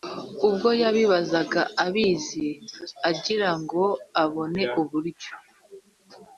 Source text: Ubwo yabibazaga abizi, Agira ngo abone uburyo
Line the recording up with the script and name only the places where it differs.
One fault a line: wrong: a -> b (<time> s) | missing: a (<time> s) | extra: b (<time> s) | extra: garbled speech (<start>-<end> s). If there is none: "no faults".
no faults